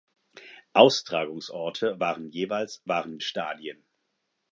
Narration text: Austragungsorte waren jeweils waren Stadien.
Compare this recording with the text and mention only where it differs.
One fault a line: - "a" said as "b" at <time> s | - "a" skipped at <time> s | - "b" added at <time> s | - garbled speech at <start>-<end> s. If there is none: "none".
none